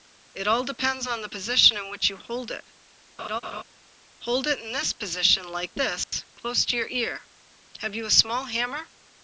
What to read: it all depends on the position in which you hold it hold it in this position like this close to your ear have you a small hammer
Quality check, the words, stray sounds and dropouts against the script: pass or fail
fail